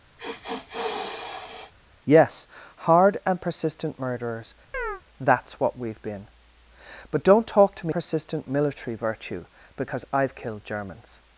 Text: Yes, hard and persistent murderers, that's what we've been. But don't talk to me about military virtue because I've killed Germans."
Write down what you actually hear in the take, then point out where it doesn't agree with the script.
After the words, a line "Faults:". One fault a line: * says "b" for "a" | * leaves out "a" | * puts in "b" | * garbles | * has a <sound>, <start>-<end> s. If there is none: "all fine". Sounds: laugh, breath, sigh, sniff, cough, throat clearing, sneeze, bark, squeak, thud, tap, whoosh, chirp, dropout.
Yes, hard and persistent murderers, that's what we've been. But don't talk to me persistent military virtue because I've killed Germans."
Faults:
* has a sniff, 0.2-1.7 s
* has a chirp, 4.7-5.0 s
* says "persistent" for "about"